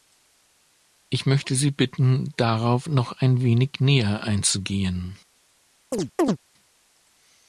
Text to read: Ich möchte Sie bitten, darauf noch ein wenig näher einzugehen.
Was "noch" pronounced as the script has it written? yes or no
yes